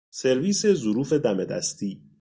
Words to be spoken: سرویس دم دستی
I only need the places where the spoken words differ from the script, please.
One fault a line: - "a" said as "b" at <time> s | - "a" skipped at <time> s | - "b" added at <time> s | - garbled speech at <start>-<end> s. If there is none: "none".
- "ظروف" added at 0.7 s